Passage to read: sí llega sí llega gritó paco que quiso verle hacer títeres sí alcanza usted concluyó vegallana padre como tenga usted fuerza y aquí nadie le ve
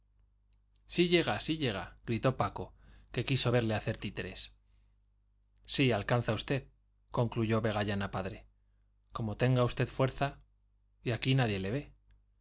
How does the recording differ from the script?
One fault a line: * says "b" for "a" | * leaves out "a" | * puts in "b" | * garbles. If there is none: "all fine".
all fine